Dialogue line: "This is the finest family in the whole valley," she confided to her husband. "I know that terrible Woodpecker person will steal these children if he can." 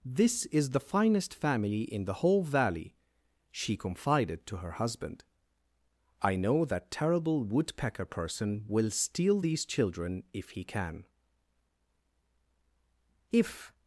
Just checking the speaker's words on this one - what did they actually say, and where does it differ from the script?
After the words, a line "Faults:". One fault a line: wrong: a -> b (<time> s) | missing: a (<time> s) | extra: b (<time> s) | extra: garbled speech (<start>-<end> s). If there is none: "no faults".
"This is the finest family in the whole valley," she confided to her husband. "I know that terrible Woodpecker person will steal these children if he can." If
Faults:
extra: If (13.3 s)